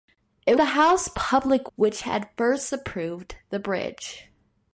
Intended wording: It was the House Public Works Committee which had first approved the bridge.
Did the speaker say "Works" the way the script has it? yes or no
no